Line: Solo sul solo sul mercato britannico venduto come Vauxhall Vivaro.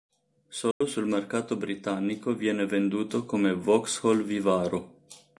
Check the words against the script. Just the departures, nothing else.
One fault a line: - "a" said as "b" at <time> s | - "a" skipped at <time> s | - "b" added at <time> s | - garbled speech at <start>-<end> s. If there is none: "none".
- "solo sul" skipped at 1.1 s
- "viene" added at 2.3 s